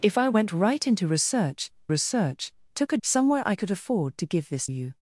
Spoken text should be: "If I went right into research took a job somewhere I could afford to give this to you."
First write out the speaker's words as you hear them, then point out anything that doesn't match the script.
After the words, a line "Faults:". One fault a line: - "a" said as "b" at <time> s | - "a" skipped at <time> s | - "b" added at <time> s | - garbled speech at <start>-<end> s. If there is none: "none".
"If I went right into research research took a somewhere I could afford to give this you."
Faults:
- "research" added at 1.9 s
- "job" skipped at 3.0 s
- "to" skipped at 4.7 s